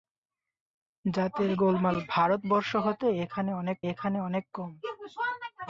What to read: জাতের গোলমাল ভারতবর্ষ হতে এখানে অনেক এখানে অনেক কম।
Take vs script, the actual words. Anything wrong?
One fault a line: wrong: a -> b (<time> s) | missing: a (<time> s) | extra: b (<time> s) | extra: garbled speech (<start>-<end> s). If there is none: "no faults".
no faults